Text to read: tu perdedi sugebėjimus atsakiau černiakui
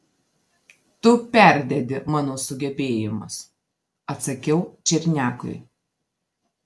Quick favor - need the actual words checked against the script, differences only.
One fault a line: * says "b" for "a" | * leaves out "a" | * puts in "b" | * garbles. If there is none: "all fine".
* puts in "mano"